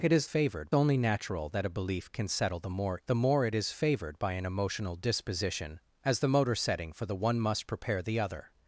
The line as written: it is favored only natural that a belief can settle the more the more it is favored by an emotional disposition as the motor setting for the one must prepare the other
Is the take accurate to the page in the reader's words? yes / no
yes